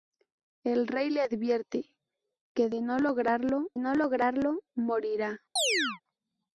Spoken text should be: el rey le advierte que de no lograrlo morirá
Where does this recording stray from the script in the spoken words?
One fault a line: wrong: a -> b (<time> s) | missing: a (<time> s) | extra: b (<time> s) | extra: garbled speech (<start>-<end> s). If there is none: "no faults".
extra: no lograrlo (3.8 s)